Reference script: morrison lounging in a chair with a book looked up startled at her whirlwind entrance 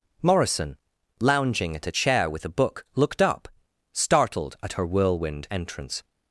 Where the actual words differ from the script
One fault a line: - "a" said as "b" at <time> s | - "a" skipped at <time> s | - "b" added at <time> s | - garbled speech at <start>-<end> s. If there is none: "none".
- "in" said as "at" at 1.8 s